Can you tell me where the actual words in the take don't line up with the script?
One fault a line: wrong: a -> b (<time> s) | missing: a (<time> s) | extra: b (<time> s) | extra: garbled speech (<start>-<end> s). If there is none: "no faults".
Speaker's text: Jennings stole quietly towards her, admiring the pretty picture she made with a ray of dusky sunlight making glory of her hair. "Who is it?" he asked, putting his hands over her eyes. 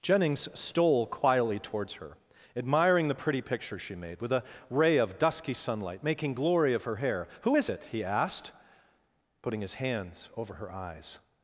no faults